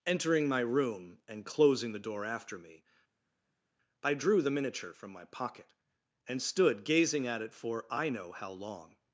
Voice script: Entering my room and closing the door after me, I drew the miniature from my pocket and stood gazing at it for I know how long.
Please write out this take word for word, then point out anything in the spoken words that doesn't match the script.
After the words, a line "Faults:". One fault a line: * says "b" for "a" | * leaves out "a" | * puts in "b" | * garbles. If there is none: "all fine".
Entering my room and closing the door after me, I drew the miniature from my pocket and stood gazing at it for I know how long.
Faults:
all fine